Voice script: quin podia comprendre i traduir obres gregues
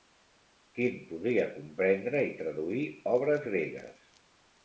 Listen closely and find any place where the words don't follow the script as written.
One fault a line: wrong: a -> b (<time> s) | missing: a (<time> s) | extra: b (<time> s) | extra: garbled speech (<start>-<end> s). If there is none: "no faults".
no faults